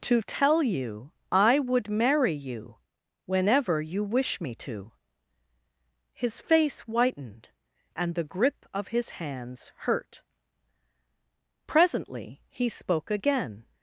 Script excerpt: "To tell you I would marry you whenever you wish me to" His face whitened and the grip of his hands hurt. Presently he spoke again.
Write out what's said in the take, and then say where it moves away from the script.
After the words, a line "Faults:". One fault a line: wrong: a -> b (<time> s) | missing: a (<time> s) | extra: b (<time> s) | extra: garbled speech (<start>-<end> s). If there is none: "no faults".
"To tell you I would marry you whenever you wish me to" His face whitened and the grip of his hands hurt. Presently he spoke again.
Faults:
no faults